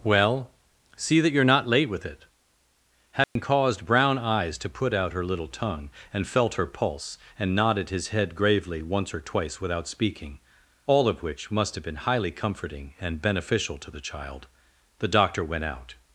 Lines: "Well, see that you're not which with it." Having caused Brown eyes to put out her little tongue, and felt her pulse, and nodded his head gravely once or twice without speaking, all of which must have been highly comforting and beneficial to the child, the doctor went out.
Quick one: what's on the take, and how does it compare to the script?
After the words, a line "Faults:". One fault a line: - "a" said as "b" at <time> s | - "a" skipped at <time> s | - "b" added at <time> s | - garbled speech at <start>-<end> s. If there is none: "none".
"Well, see that you're not late with it." Having caused Brown eyes to put out her little tongue, and felt her pulse, and nodded his head gravely once or twice without speaking, all of which must have been highly comforting and beneficial to the child, the doctor went out.
Faults:
- "which" said as "late" at 1.7 s